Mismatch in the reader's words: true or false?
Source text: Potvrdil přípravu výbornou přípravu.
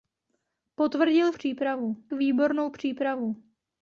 false